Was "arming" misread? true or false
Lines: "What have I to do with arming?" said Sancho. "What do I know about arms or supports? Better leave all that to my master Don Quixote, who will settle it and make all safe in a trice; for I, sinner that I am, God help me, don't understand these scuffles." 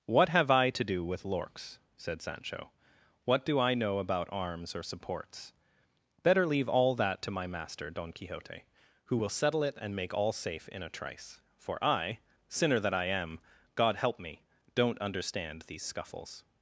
true